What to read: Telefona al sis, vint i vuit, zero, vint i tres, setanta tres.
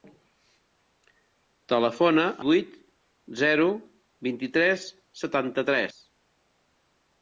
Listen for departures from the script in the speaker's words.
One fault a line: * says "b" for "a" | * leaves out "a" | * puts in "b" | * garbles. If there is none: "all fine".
* leaves out "al sis vint"